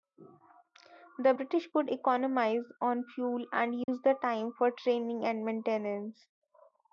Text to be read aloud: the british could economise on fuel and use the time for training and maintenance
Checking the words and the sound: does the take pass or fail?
fail